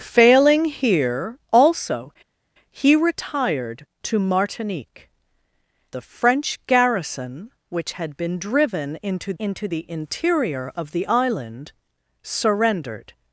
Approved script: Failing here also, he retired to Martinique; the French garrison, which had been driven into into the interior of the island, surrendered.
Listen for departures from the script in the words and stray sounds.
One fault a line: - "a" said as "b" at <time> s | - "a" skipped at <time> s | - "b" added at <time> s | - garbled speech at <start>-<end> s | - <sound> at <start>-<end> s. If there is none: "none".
none